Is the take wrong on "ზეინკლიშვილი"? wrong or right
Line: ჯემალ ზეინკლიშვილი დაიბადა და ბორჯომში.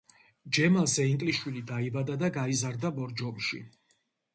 right